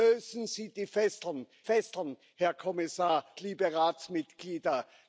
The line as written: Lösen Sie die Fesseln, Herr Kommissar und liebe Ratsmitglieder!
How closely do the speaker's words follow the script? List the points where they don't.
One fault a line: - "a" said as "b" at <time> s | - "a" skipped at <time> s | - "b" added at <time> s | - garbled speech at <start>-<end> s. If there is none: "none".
- "Fesseln" added at 1.6 s
- "und" skipped at 3.3 s